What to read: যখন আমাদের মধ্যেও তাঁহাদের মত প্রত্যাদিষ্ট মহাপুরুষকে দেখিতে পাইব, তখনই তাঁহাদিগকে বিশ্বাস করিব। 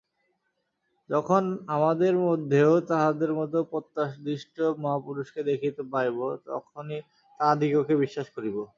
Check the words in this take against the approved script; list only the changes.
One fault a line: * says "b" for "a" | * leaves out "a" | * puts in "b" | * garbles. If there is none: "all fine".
all fine